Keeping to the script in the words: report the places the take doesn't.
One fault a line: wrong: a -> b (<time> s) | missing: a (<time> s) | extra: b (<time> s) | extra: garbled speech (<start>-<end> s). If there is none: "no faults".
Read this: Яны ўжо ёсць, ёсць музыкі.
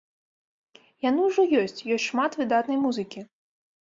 extra: шмат выдатнай (2.0 s)